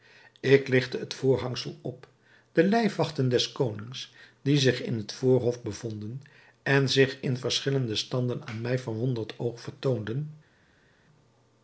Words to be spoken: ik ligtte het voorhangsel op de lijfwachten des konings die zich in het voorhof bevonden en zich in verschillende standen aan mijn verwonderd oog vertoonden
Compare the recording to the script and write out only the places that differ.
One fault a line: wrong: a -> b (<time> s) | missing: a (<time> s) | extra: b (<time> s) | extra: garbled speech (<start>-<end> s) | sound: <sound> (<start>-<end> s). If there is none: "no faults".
no faults